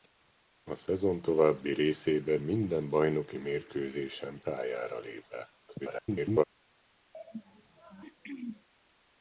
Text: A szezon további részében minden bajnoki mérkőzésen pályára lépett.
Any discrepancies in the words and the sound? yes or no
yes